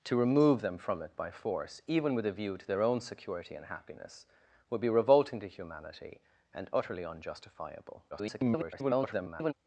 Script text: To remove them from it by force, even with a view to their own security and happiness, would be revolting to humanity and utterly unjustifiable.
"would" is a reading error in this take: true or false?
false